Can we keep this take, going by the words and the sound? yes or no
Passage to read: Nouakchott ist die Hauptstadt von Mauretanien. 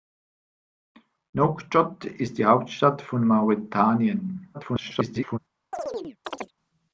no